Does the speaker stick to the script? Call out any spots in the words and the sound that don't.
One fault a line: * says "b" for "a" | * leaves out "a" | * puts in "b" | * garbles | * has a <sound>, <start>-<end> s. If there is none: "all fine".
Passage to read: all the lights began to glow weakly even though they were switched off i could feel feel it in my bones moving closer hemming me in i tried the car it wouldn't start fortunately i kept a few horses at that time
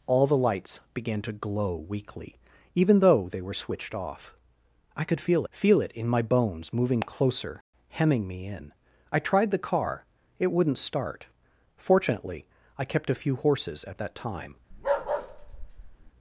* has a bark, 14.7-16.1 s